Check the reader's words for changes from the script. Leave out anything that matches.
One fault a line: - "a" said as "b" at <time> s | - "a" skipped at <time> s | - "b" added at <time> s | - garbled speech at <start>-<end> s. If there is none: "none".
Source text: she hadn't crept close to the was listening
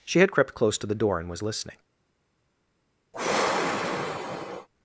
- "hadn't" said as "had" at 0.2 s
- "door and" added at 0.9 s